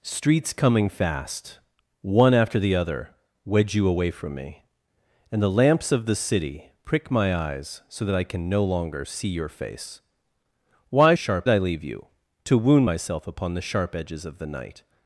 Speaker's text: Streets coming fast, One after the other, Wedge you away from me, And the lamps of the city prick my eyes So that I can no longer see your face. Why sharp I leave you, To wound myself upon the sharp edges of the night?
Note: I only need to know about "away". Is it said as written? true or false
true